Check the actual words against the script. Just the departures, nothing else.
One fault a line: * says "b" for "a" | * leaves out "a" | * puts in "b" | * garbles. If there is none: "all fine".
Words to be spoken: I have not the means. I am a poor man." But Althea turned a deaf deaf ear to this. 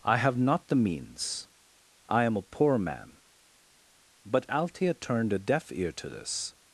* leaves out "deaf"